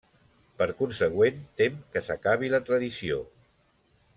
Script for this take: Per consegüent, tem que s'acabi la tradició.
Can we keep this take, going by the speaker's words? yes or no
yes